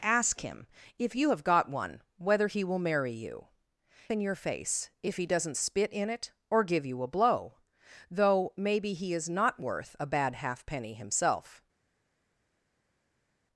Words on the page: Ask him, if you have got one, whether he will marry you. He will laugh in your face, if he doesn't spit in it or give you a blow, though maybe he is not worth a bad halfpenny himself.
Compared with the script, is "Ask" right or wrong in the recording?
right